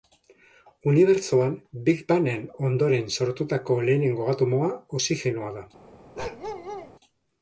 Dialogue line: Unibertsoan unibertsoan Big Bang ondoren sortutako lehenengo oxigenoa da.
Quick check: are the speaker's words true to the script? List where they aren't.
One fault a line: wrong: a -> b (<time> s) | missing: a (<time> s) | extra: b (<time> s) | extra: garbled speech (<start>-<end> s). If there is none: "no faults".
missing: unibertsoan (1.5 s)
extra: en (2.3 s)
extra: atomoa (4.3 s)